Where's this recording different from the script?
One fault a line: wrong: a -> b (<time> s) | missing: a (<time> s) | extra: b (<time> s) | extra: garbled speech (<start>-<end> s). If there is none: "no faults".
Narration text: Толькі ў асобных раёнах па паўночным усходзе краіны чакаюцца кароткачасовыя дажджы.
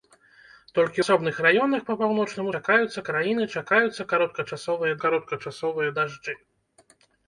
missing: ў (1.0 s)
wrong: усходзе -> чакаюцца (2.6 s)
extra: кароткачасовыя (5.0 s)